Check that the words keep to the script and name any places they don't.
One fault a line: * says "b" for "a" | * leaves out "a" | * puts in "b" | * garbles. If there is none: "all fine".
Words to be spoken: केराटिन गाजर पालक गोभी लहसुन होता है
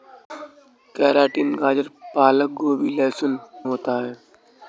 all fine